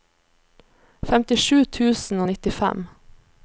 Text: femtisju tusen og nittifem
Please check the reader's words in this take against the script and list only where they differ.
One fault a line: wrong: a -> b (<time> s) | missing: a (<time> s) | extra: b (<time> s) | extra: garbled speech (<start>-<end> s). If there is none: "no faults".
no faults